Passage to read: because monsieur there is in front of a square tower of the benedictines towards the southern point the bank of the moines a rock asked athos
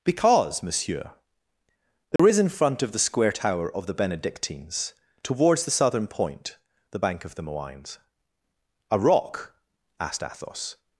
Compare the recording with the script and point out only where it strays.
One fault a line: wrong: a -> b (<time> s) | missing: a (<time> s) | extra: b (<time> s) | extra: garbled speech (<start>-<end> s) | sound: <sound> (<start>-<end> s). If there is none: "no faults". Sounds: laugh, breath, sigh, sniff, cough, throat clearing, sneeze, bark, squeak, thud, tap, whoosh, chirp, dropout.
sound: dropout (2.2-2.2 s)
wrong: a -> the (2.9 s)